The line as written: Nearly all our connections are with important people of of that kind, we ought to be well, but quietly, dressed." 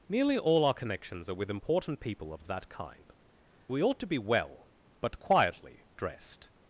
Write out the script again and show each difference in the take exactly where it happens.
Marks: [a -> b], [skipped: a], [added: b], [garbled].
Nearly all our connections are with important people of of that kind, we ought to be well, but quietly, dressed."